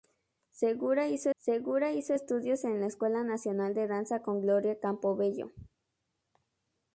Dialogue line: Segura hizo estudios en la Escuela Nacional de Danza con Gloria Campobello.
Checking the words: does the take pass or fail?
fail